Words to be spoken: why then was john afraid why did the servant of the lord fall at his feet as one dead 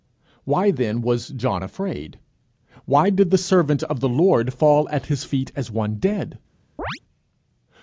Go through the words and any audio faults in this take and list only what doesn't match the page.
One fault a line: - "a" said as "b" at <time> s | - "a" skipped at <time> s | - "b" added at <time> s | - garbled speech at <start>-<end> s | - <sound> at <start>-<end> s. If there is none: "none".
- chirp at 6.8-7.0 s